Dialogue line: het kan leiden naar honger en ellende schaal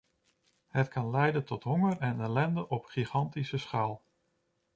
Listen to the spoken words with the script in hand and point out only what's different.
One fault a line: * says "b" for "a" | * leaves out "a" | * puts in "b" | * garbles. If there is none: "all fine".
* says "tot" for "naar"
* puts in "op gigantische"